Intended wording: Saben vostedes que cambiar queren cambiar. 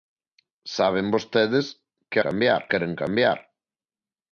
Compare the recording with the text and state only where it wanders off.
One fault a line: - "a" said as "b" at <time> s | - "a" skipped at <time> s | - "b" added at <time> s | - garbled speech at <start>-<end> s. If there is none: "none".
none